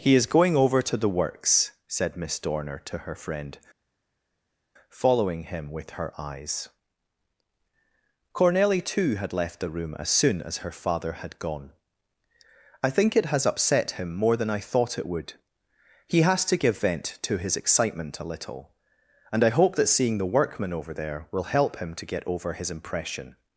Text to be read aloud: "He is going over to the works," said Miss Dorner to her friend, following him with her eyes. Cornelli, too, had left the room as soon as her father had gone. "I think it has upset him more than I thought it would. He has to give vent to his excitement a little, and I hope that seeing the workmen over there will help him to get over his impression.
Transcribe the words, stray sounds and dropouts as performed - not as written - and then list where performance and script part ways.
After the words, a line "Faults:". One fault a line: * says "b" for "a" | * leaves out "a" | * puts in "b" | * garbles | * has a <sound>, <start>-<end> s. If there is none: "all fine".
"He is going over to the works," said Miss Dorner to her friend, following him with her eyes. Cornelli, too, had left the room as soon as her father had gone. "I think it has upset him more than I thought it would. He has to give vent to his excitement a little, and I hope that seeing the workmen over there will help him to get over his impression.
Faults:
all fine